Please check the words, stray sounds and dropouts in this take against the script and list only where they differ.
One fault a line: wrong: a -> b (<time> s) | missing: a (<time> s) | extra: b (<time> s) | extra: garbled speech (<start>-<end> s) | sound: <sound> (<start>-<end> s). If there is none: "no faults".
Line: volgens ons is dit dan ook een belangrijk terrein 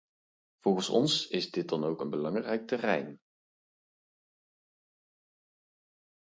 no faults